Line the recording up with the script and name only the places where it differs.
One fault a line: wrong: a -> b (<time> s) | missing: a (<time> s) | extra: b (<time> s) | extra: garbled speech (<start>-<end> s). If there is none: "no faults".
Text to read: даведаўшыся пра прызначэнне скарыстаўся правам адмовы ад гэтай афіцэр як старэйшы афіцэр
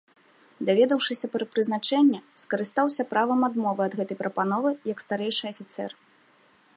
wrong: афіцэр -> прапановы (4.2 s)